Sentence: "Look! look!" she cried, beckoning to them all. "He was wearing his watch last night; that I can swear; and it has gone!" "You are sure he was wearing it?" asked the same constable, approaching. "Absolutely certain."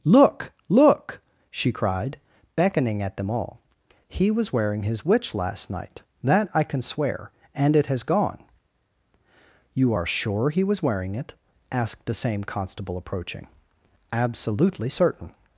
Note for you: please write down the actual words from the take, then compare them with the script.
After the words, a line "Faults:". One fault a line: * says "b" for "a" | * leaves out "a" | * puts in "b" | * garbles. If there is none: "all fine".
"Look! look!" she cried, beckoning at them all. "He was wearing his witch last night; that I can swear; and it has gone!" "You are sure he was wearing it?" asked the same constable, approaching. "Absolutely certain."
Faults:
* says "at" for "to"
* says "witch" for "watch"